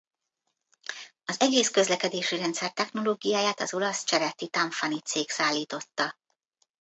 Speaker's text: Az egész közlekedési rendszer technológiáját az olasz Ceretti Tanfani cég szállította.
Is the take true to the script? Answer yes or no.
yes